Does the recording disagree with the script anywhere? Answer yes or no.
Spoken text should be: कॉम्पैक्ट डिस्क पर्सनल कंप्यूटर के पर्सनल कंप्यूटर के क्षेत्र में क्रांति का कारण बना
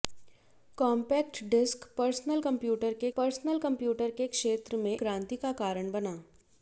no